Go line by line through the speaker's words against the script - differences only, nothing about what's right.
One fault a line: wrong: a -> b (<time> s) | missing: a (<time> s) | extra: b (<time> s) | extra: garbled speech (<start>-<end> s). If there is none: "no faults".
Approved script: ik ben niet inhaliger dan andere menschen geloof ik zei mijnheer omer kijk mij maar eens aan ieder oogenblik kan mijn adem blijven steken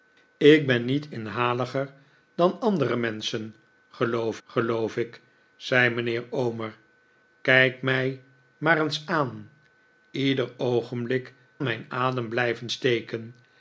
extra: geloof (4.4 s)
missing: kan (11.3 s)